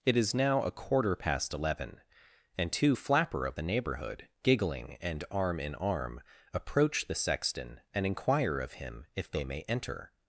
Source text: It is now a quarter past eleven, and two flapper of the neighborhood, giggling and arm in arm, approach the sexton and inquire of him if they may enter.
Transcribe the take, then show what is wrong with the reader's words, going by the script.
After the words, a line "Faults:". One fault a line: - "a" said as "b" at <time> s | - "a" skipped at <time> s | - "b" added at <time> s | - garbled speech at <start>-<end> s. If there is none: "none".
It is now a quarter past eleven, and two flapper of the neighborhood, giggling and arm in arm, approach the sexton and inquire of him if they may enter.
Faults:
none